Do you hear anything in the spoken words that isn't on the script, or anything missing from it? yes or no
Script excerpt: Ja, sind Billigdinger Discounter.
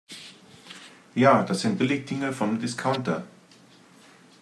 yes